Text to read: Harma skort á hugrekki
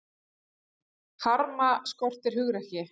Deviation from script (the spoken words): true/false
false